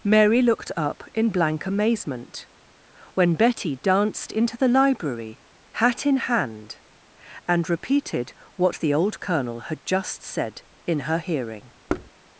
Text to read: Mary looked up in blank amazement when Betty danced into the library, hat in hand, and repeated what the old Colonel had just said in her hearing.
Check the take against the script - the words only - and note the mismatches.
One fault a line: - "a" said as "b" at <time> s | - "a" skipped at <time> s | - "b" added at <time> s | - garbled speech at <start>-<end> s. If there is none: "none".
none